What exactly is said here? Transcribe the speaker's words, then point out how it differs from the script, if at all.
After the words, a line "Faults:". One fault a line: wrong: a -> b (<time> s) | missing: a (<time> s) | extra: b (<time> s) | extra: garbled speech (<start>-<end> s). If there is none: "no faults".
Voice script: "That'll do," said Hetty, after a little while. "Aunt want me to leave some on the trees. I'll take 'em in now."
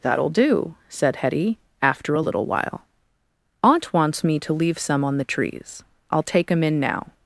"That'll do," said Hetty, after a little while. "Aunt wants me to leave some on the trees. I'll take 'em in now."
Faults:
wrong: want -> wants (3.9 s)